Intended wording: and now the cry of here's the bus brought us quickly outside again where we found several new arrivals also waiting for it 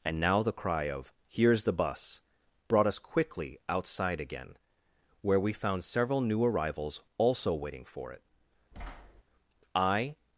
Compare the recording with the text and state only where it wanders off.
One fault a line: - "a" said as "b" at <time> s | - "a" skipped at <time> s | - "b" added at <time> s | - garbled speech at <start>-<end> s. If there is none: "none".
- "i" added at 9.7 s